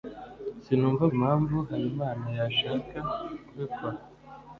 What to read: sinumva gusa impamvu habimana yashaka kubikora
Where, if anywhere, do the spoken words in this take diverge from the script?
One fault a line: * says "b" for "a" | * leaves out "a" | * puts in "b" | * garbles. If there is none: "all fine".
* leaves out "gusa"